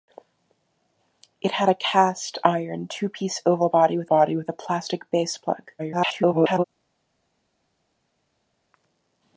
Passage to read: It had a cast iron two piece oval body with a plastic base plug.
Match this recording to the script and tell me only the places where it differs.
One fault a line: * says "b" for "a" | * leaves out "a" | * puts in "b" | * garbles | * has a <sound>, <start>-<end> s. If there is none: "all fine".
* puts in "body with"
* garbles